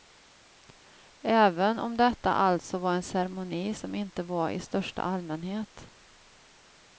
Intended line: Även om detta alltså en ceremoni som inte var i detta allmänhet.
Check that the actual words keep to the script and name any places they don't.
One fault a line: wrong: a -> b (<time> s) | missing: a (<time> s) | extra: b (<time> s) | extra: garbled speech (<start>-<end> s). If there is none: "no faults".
extra: var (2.8 s)
wrong: detta -> största (4.6 s)